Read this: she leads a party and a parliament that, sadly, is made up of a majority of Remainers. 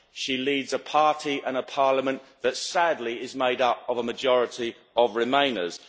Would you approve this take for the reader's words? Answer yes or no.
yes